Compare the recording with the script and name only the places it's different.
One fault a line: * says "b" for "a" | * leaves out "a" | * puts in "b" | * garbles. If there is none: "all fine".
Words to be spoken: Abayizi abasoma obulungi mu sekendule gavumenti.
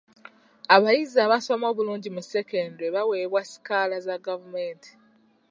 * puts in "baweebwa sikaala za"